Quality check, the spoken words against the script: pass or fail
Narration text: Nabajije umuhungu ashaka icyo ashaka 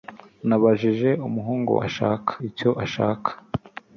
pass